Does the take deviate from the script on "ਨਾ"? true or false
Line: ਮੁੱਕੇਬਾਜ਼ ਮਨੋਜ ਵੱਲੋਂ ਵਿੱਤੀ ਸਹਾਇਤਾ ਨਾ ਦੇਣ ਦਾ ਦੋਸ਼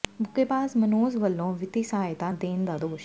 true